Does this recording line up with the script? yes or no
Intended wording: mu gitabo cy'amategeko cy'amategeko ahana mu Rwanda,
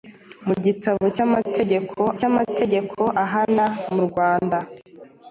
yes